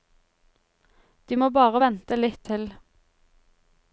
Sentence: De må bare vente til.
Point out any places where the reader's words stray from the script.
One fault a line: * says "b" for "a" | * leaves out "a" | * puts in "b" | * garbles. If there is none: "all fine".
* puts in "litt"